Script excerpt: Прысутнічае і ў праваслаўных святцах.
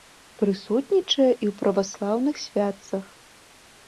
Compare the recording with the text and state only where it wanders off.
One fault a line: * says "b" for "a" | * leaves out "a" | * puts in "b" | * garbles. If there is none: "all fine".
all fine